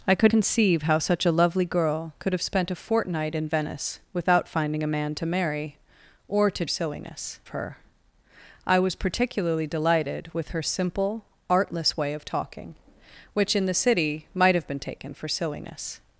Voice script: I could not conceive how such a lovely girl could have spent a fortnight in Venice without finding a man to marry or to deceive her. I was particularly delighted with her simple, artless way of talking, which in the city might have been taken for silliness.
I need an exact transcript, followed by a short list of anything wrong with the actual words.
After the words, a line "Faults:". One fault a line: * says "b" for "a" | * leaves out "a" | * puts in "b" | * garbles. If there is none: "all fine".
I could conceive how such a lovely girl could have spent a fortnight in Venice without finding a man to marry or to silliness her. I was particularly delighted with her simple, artless way of talking, which in the city might have been taken for silliness.
Faults:
* leaves out "not"
* says "silliness" for "deceive"